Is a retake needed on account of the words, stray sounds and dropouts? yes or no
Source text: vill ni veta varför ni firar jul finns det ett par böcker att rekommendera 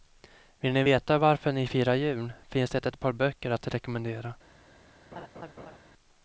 yes